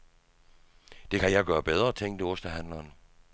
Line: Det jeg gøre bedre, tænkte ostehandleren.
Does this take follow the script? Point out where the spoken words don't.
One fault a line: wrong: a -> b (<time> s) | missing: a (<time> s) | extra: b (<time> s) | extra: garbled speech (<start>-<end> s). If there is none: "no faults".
extra: kan (1.2 s)